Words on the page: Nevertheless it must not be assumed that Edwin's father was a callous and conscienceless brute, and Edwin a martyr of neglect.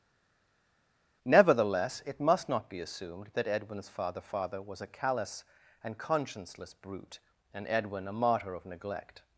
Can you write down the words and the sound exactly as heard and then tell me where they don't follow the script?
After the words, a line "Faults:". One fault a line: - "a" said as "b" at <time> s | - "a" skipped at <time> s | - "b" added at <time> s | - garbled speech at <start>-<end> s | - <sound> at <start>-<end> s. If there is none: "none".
Nevertheless it must not be assumed that Edwin's father father was a callous and conscienceless brute, and Edwin a martyr of neglect.
Faults:
- "father" added at 4.2 s